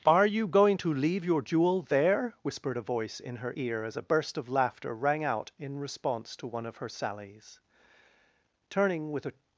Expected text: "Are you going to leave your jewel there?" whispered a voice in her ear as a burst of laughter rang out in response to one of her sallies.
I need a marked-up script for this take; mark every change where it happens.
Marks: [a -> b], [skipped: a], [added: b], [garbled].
"Are you going to leave your jewel there?" whispered a voice in her ear as a burst of laughter rang out in response to one of her sallies. [added: Turning with a]